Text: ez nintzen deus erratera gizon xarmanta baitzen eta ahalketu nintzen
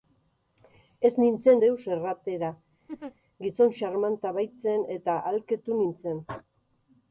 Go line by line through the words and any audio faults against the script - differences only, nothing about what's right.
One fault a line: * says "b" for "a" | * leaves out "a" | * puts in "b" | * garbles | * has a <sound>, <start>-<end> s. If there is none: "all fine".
* has a laugh, 2.9-3.1 s